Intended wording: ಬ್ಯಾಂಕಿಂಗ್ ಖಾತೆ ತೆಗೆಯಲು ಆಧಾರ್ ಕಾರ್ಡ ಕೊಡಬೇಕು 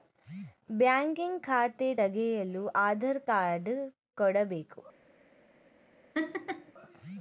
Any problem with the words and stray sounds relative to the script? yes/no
yes